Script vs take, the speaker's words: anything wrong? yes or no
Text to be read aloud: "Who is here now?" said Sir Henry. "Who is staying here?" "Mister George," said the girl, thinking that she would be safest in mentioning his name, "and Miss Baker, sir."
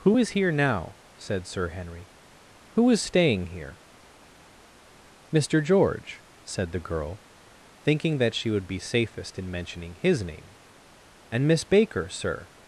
no